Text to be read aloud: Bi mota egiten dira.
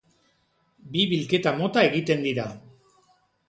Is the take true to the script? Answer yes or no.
no